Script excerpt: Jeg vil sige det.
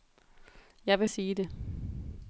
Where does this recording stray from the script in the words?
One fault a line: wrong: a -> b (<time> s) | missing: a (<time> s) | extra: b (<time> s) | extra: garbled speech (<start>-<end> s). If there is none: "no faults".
no faults